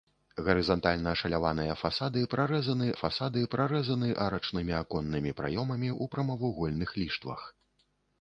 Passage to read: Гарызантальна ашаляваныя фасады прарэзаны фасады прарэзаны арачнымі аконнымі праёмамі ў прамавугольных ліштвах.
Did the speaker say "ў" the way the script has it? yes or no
yes